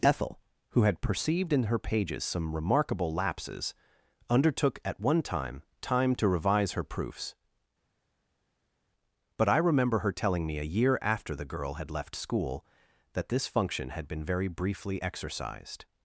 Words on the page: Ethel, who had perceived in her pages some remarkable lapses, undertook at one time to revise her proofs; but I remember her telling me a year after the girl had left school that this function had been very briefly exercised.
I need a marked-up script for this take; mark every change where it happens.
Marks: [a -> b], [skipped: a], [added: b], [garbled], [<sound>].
Ethel, who had perceived in her pages some remarkable lapses, undertook at one time [added: time] to revise her proofs; but I remember her telling me a year after the girl had left school that this function had been very briefly exercised.